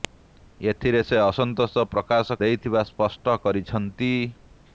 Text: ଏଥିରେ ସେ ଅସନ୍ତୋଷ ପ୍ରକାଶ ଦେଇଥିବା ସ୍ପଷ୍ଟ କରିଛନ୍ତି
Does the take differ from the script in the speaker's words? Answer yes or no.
no